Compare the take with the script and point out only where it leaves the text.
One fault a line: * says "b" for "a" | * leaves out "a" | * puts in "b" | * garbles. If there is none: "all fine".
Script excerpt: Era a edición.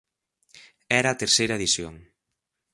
* puts in "terceira"